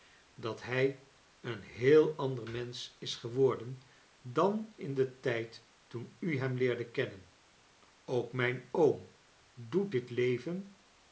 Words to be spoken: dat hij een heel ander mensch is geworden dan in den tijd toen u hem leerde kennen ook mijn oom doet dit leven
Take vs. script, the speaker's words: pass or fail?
pass